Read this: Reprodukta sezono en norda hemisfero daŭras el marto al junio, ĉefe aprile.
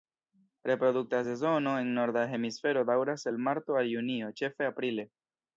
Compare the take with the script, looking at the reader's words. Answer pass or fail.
pass